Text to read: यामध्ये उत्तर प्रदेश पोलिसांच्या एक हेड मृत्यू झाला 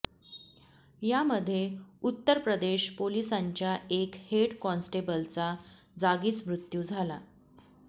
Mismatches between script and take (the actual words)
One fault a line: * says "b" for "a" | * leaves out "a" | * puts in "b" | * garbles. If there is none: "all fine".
* puts in "कॉन्स्टेबलचा जागीच"